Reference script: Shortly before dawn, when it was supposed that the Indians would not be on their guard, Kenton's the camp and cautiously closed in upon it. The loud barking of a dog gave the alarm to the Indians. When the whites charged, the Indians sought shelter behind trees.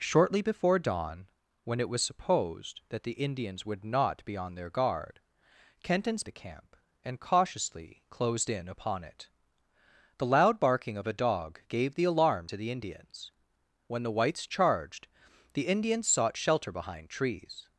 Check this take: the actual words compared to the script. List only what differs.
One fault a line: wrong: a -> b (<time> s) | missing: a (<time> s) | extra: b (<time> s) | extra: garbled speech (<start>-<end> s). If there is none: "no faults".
no faults